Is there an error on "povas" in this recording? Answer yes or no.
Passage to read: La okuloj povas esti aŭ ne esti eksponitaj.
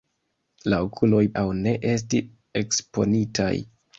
yes